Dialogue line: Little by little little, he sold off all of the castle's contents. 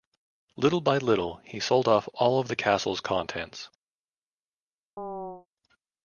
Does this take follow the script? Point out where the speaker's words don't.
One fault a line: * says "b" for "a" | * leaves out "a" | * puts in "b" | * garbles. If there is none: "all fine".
* leaves out "little"